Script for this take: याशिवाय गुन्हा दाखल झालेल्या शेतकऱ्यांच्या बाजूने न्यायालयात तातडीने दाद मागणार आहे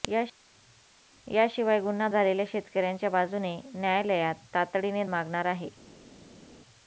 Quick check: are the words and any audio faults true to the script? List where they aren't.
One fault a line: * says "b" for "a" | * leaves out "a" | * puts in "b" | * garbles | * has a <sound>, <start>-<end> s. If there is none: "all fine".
* leaves out "दाखल"
* leaves out "दाद"